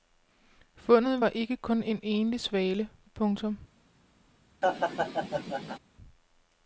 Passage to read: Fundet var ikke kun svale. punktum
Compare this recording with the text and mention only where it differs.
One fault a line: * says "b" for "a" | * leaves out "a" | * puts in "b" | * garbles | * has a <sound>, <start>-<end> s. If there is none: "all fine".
* puts in "en enlig"
* has a laugh, 4.6-5.8 s